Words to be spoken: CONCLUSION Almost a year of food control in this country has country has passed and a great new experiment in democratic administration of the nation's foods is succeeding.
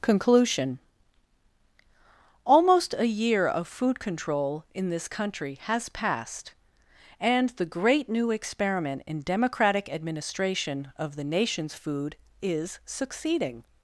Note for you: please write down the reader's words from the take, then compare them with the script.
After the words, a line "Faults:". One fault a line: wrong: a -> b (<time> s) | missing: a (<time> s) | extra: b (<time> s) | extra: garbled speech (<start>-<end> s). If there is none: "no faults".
CONCLUSION Almost a year of food control in this country has passed and the great new experiment in democratic administration of the nation's food is succeeding.
Faults:
missing: country has (5.9 s)
wrong: a -> the (7.5 s)
wrong: foods -> food (11.7 s)